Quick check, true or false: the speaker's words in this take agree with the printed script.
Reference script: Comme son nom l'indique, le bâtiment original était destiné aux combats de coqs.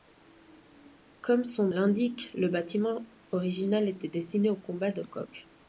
false